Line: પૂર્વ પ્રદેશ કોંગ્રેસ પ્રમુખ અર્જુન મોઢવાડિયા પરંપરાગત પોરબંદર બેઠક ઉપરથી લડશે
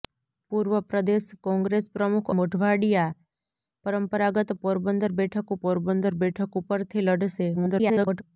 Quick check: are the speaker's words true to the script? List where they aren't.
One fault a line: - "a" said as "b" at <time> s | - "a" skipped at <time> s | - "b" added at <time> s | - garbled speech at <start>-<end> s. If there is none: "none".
- "અર્જુન" skipped at 2.3 s
- "પોરબંદર બેઠક" added at 5.6 s
- garbled speech at 7.5-8.2 s